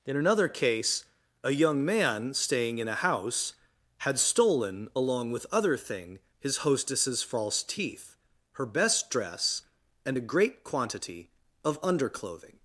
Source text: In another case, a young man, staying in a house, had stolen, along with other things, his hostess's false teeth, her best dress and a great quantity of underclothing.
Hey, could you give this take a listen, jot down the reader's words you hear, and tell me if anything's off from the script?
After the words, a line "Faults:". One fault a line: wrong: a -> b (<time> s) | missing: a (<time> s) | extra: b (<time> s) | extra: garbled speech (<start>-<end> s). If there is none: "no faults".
In another case, a young man, staying in a house, had stolen, along with other thing, his hostess's false teeth, her best dress and a great quantity of underclothing.
Faults:
wrong: things -> thing (5.8 s)